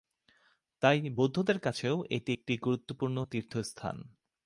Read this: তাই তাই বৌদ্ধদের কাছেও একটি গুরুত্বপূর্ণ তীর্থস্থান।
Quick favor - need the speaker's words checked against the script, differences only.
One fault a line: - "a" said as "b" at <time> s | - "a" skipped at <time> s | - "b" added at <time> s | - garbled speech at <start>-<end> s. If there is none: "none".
- "তাই" skipped at 1.0 s
- "এটি" added at 2.1 s